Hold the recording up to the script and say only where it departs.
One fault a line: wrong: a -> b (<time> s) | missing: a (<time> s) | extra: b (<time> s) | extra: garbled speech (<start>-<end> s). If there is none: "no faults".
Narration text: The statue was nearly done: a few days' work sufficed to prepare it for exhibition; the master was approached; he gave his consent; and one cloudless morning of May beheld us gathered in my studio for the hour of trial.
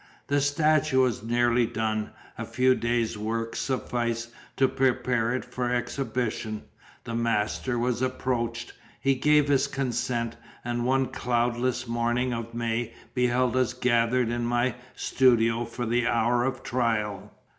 no faults